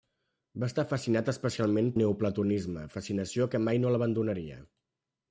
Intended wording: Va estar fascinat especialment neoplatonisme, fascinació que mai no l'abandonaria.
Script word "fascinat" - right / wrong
right